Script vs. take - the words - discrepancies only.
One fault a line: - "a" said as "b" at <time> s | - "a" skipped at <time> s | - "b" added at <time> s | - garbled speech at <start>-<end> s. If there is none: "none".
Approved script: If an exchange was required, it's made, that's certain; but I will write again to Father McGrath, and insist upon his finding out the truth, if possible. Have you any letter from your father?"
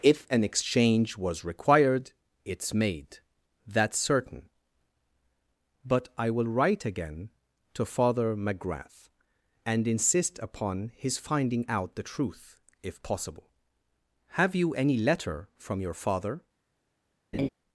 none